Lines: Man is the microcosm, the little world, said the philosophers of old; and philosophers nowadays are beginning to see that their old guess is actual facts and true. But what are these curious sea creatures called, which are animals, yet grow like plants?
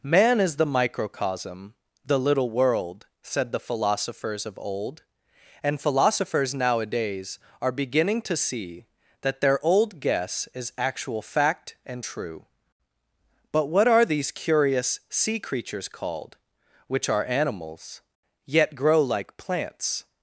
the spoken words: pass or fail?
fail